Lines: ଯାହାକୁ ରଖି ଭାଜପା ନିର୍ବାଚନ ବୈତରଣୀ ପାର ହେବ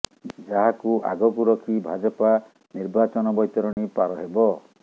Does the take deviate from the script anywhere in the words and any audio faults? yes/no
yes